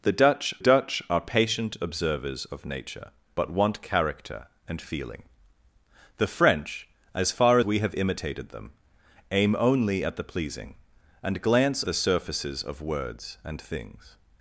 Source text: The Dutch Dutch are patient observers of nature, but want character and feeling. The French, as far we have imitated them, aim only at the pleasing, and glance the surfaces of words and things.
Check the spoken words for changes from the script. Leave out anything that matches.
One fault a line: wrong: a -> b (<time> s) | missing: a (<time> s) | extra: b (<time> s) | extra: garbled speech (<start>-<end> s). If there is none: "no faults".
no faults